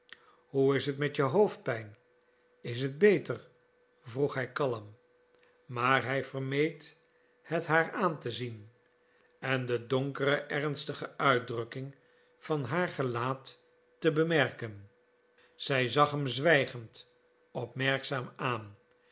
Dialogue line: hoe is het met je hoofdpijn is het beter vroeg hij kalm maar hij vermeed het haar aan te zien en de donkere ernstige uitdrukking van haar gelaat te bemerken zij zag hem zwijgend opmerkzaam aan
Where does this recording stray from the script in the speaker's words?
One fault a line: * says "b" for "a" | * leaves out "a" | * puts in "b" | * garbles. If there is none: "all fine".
all fine